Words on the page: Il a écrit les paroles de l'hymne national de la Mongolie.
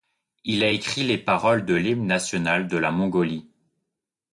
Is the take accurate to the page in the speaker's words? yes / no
yes